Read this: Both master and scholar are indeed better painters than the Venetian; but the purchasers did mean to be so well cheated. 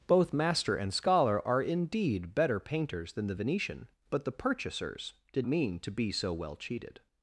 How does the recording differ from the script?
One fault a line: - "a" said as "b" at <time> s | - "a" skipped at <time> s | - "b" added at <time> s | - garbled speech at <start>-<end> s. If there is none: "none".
none